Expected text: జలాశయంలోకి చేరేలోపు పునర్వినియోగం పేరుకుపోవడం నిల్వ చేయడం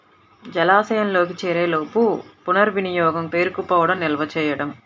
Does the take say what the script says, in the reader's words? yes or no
yes